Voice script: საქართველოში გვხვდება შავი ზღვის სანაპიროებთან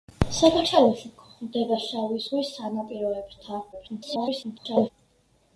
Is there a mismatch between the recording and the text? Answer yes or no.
yes